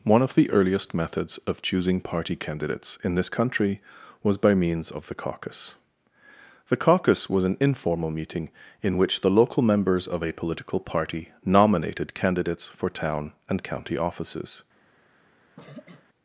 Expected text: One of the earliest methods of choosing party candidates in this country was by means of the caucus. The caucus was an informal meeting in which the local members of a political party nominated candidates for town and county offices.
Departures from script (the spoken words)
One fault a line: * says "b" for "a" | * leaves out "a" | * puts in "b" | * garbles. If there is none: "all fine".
all fine